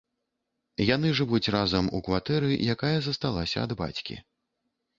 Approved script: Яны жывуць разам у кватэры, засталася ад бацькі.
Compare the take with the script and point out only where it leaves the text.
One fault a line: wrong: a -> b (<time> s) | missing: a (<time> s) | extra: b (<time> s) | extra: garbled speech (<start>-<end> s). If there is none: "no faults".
extra: якая (2.8 s)